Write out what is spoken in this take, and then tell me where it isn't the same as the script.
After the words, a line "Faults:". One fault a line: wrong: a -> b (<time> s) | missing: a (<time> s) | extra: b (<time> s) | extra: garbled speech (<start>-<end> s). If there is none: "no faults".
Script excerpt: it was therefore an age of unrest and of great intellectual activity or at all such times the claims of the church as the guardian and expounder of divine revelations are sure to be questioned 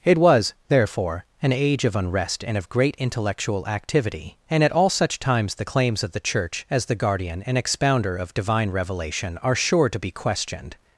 it was therefore an age of unrest and of great intellectual activity and at all such times the claims of the church as the guardian and expounder of divine revelation are sure to be questioned
Faults:
wrong: or -> and (4.5 s)
wrong: revelations -> revelation (8.7 s)